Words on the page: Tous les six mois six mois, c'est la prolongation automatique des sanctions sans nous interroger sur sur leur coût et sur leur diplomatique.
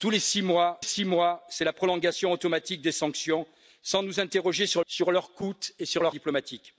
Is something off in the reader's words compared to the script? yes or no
no